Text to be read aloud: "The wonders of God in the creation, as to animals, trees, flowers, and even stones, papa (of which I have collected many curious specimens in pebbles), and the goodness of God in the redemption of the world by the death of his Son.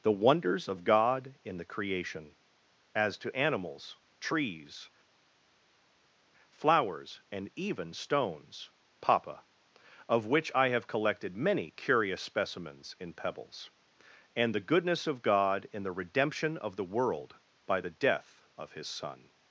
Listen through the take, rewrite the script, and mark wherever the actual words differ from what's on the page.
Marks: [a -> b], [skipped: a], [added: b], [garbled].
"The wonders of God in the creation, as to animals, trees, flowers, and even stones, papa (of which I have collected many curious specimens in pebbles), and the goodness of God in the redemption of the world by the death of his Son.